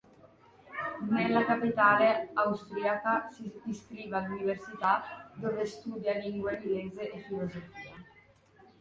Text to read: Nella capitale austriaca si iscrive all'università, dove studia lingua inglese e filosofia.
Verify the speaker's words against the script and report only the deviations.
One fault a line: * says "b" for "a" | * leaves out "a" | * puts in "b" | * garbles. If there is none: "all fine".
all fine